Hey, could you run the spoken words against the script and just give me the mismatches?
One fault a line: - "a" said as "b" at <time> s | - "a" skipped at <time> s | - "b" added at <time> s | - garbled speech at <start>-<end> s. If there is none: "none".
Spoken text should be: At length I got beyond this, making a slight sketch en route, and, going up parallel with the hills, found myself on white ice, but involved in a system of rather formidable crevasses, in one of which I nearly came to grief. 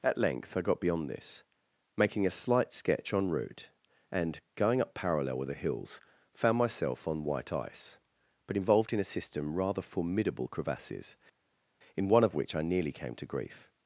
- "of" skipped at 9.5 s